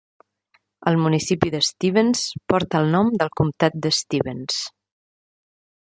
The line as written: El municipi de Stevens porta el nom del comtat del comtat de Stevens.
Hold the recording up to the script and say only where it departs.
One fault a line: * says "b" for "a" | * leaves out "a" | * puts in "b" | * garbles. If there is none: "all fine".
* leaves out "del comtat"